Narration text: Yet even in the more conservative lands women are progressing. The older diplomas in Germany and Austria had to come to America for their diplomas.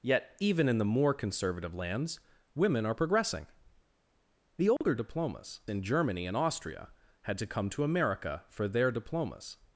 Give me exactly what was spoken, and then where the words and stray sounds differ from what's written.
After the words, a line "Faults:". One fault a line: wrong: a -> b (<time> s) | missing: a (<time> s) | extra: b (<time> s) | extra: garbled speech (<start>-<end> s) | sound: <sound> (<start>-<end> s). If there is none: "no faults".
Yet even in the more conservative lands women are progressing. The older diplomas in Germany and Austria had to come to America for their diplomas.
Faults:
sound: dropout (4.8-4.8 s)